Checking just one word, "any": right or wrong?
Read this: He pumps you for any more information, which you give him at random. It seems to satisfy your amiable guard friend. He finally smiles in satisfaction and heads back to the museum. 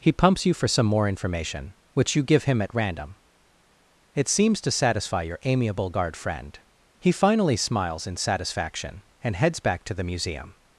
wrong